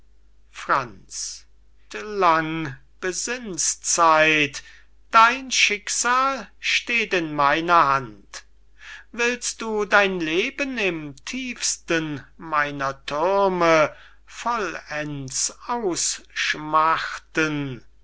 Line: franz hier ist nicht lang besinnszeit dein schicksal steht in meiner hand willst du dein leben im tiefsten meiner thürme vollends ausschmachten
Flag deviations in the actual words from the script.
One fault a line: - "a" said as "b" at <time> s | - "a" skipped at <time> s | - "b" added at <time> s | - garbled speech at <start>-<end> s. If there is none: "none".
- "hier ist nicht" skipped at 1.4 s